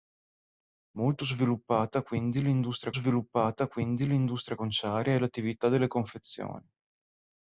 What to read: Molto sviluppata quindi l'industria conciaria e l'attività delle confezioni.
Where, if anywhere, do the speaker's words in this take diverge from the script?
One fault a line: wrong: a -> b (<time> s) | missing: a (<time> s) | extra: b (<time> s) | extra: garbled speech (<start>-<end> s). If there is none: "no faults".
extra: sviluppata quindi l'industria (2.9 s)